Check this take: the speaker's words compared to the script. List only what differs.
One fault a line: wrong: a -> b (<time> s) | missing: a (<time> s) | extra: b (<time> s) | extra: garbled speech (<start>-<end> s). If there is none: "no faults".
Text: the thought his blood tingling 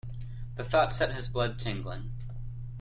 extra: set (0.9 s)